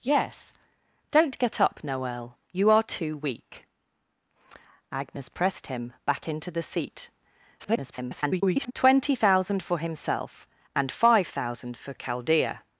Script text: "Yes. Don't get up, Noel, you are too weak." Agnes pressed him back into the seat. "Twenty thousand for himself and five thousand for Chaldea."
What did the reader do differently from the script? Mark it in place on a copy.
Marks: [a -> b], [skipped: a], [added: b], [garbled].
"Yes. Don't get up, Noel, you are too weak." Agnes pressed him back into the seat. [garbled] "Twenty thousand for himself and five thousand for Chaldea."